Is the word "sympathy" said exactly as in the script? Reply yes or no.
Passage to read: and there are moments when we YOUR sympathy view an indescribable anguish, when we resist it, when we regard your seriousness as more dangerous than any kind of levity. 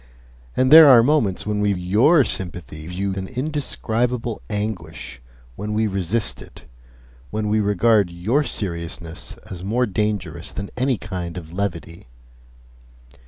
yes